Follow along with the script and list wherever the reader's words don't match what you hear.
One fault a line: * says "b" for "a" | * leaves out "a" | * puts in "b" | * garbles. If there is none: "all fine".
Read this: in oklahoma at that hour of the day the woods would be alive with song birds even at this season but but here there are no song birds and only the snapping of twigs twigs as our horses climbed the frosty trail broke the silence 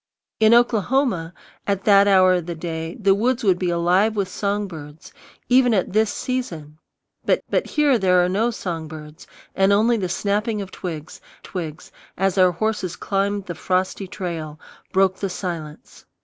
all fine